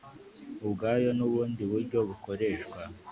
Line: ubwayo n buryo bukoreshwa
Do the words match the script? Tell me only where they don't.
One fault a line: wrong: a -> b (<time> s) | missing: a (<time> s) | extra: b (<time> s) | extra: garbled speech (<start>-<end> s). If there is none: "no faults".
extra: ubundi (1.3 s)